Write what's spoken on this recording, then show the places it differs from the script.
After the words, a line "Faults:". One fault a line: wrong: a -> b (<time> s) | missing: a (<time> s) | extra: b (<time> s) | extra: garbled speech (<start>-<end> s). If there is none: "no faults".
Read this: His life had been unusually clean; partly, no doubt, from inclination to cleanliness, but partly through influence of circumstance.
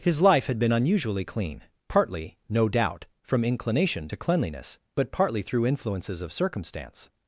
His life had been unusually clean; partly, no doubt, from inclination to cleanliness, but partly through influences of circumstance.
Faults:
wrong: influence -> influences (5.7 s)